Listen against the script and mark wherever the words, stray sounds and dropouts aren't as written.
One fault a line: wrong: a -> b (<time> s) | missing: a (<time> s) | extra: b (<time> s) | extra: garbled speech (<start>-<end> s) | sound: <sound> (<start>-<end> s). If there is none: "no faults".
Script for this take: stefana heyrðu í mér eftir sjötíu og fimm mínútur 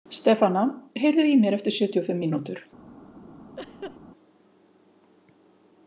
sound: laugh (3.6-4.0 s)